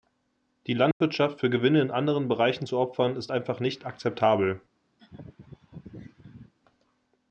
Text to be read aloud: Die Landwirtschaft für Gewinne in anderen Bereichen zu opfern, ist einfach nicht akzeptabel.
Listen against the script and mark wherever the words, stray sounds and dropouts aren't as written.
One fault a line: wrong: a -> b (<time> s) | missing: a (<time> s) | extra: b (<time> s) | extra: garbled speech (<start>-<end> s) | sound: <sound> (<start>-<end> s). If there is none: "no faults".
sound: dropout (0.9-1.0 s)
sound: laugh (5.0-6.5 s)